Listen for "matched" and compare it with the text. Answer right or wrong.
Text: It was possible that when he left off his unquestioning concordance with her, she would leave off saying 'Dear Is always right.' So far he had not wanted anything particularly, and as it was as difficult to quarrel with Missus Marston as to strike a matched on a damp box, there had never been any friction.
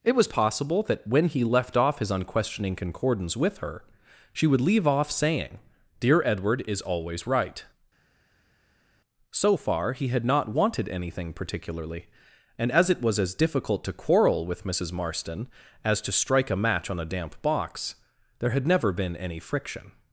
wrong